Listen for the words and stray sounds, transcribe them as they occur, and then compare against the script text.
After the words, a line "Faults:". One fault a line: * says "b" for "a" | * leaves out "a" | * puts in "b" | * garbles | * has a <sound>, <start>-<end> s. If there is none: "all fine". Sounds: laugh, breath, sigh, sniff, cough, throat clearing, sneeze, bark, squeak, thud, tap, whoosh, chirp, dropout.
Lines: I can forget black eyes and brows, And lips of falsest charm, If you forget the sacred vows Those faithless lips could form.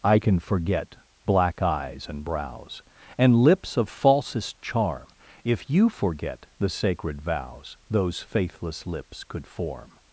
I can forget black eyes and brows, And lips of falsest charm, If you forget the sacred vows Those faithless lips could form.
Faults:
all fine